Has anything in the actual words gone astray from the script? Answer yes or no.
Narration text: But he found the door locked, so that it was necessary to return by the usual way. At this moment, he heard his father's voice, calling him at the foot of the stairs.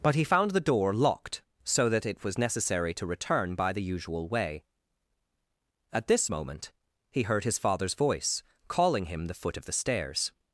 yes